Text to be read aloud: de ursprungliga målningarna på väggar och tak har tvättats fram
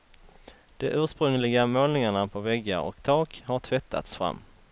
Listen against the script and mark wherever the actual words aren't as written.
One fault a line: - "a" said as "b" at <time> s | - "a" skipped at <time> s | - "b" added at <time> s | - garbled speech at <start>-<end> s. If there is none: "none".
none